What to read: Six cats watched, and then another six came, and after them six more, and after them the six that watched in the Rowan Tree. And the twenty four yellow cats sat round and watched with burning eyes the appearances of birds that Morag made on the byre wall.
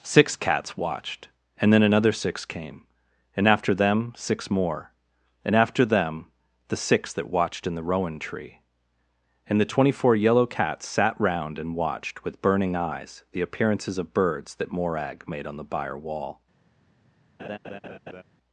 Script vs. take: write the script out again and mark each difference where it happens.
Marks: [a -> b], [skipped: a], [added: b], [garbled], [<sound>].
Six cats watched, and then another six came, and after them six more, and after them the six that watched in the Rowan Tree. And the twenty four yellow cats sat round and watched with burning eyes the appearances of birds that Morag made on the byre wall. [laugh]